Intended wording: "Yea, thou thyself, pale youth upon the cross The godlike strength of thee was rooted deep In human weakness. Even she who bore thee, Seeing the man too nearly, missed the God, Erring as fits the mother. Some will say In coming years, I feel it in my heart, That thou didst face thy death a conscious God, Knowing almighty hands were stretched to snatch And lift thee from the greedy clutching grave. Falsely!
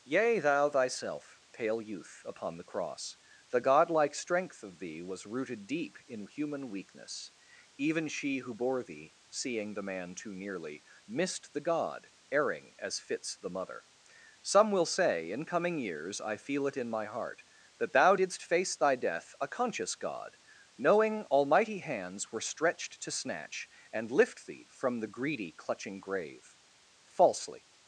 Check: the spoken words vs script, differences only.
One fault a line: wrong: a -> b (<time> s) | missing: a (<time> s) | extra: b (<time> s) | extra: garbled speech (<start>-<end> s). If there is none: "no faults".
no faults